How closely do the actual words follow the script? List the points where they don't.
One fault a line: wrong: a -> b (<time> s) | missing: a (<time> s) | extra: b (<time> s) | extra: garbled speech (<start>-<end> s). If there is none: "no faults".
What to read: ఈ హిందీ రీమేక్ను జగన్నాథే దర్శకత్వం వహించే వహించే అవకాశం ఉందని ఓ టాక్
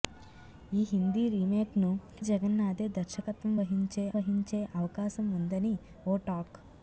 no faults